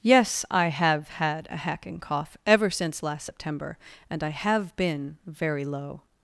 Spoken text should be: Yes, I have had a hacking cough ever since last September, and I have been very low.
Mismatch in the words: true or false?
false